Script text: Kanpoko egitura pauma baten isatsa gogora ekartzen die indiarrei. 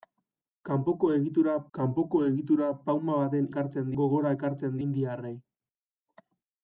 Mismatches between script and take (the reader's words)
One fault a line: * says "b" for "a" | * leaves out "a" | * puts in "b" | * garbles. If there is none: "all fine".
* puts in "kanpoko egitura"
* says "ekartzen" for "isatsa"
* leaves out "die"